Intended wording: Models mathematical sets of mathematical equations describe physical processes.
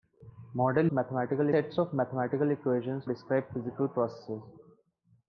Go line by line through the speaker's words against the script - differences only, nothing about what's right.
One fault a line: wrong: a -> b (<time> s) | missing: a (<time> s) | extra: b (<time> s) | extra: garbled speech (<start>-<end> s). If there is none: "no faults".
no faults